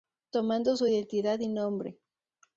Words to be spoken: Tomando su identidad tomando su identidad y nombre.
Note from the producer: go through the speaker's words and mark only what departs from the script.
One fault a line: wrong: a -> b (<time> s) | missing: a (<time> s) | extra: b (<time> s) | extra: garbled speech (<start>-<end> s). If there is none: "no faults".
missing: tomando su identidad (1.4 s)